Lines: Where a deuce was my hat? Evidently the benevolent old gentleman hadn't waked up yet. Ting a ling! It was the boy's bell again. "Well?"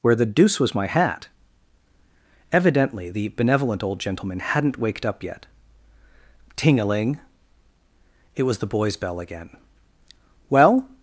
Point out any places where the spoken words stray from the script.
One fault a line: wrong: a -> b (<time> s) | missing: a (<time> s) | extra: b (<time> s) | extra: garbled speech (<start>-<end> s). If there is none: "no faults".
wrong: a -> the (0.1 s)